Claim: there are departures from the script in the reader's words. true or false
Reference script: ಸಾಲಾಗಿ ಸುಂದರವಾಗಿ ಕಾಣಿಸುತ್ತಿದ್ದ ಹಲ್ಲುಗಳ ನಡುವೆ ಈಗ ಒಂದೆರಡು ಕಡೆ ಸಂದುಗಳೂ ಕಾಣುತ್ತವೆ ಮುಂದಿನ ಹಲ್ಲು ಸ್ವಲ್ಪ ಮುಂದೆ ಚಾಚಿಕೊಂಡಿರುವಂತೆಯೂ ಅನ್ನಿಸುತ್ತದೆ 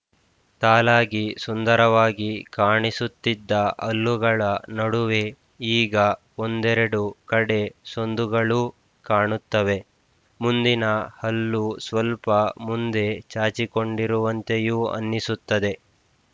false